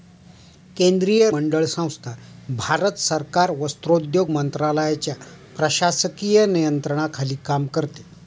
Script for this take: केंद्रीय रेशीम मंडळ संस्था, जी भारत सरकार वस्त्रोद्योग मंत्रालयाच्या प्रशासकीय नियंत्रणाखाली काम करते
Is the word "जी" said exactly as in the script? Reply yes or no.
no